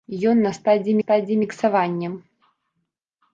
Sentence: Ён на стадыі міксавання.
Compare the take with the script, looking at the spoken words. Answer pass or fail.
fail